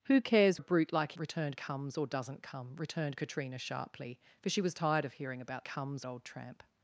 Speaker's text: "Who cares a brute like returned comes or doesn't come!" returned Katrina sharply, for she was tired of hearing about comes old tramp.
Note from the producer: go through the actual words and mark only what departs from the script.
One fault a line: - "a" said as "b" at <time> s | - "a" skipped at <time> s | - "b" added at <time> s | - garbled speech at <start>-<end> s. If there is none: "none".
none